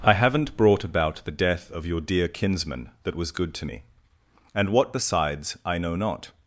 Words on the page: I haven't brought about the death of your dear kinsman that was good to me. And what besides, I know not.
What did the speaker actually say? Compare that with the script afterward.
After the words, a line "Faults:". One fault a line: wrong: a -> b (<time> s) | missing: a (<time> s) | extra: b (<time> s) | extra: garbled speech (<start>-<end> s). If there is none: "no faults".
I haven't brought about the death of your dear kinsman that was good to me. And what besides, I know not.
Faults:
no faults